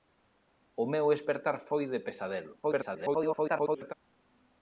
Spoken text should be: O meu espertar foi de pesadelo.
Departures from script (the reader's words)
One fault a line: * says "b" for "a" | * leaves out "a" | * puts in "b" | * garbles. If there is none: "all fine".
* garbles